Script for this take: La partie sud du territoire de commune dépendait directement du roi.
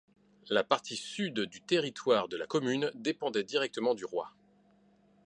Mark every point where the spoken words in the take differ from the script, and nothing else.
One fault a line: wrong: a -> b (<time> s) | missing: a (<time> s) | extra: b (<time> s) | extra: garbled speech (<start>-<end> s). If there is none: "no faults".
extra: la (2.4 s)